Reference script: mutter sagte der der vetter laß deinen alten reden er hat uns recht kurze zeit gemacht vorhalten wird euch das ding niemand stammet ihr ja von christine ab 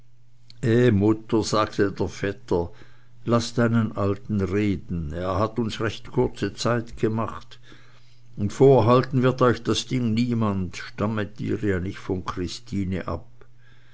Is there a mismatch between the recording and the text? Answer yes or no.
yes